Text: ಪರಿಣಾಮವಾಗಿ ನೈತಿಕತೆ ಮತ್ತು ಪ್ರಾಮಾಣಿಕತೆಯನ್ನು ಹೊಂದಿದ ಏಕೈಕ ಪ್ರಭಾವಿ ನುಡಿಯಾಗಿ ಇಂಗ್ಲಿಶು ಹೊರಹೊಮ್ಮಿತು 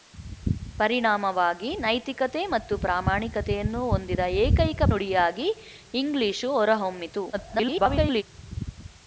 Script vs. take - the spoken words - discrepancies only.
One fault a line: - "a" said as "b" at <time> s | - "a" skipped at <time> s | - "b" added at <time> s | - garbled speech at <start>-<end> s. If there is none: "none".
- "ಪ್ರಭಾವಿ" skipped at 4.8 s
- garbled speech at 7.3-8.2 s